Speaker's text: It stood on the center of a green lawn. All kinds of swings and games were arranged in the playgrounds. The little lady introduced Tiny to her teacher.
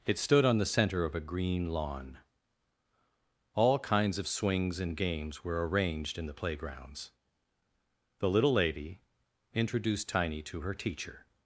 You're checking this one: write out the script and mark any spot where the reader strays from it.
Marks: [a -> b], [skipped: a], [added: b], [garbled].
It stood on the center of a green lawn. All kinds of swings and games were arranged in the playgrounds. The little lady introduced Tiny to her teacher.